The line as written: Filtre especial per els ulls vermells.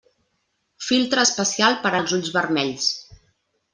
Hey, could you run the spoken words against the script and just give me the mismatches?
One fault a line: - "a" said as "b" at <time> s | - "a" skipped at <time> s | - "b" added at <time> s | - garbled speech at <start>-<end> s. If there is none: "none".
none